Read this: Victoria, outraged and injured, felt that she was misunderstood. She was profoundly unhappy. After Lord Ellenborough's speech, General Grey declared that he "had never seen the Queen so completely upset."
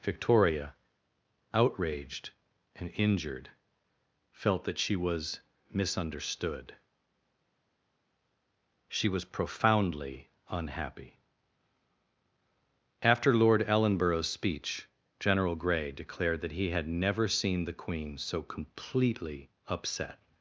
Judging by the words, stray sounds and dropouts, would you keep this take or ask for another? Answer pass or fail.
pass